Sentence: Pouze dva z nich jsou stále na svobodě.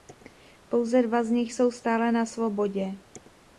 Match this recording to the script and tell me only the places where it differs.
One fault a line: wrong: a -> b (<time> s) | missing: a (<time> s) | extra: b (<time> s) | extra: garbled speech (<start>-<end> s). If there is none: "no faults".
no faults